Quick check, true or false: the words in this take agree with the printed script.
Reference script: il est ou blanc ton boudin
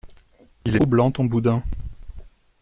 true